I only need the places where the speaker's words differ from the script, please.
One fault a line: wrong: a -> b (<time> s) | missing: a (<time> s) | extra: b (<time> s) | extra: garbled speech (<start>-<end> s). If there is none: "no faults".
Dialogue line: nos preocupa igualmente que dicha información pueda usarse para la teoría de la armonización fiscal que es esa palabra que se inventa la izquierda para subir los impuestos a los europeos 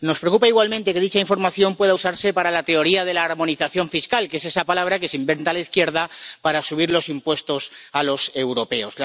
no faults